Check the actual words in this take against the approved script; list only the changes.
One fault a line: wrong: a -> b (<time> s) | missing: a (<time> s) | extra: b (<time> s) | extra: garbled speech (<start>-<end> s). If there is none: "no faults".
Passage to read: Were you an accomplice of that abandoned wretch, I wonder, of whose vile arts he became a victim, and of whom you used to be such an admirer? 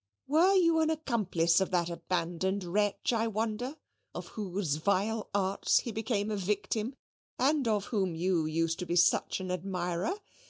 no faults